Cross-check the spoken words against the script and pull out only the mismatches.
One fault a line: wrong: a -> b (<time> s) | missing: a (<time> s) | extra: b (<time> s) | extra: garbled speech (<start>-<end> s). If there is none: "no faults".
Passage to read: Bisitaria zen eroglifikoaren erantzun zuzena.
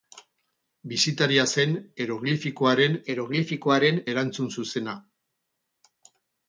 extra: eroglifikoaren (3.1 s)